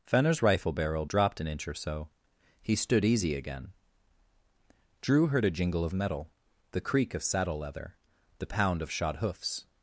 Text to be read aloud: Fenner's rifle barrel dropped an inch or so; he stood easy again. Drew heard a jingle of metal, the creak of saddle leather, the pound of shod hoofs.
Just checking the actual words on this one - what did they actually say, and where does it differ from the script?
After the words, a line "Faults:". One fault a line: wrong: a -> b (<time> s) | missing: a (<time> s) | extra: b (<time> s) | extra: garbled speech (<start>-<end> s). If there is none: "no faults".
Fenner's rifle barrel dropped an inch or so; he stood easy again. Drew heard a jingle of metal, the creak of saddle leather, the pound of shod hoofs.
Faults:
no faults